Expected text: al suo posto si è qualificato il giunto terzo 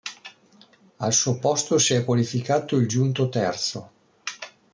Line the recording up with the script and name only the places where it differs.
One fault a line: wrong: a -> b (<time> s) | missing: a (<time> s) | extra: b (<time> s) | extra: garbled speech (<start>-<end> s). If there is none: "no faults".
no faults